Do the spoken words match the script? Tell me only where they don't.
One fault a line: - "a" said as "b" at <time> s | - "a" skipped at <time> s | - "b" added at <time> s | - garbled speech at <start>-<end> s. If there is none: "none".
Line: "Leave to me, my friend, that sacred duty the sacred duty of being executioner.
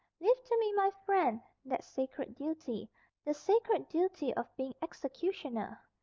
none